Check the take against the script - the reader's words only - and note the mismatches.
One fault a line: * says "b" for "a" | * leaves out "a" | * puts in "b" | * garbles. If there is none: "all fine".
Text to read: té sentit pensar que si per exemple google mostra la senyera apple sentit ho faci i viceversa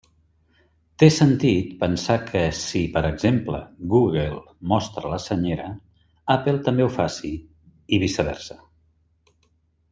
* says "també" for "sentit"